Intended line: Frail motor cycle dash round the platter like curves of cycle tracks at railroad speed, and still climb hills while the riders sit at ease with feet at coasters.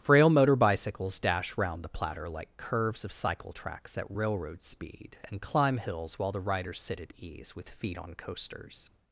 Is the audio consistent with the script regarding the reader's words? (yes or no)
no